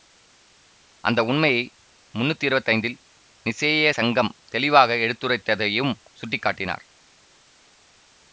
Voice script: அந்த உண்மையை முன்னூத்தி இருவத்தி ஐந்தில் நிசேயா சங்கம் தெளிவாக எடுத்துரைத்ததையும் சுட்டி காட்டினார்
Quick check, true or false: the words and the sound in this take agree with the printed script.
true